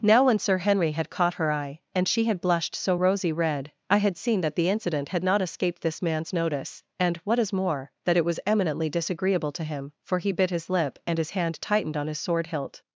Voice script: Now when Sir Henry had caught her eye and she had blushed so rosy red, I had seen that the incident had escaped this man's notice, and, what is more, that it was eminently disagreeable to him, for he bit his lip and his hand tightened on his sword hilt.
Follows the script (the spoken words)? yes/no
no